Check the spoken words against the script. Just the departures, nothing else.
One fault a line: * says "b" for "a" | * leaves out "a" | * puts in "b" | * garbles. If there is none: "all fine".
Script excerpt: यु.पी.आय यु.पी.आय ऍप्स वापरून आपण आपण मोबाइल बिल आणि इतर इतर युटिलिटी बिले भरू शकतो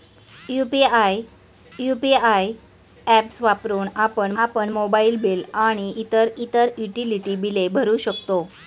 all fine